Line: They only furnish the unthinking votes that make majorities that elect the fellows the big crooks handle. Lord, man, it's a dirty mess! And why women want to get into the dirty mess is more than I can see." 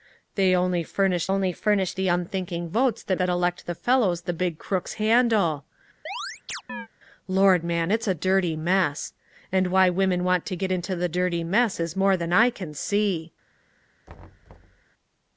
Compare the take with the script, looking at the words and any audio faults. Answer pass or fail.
fail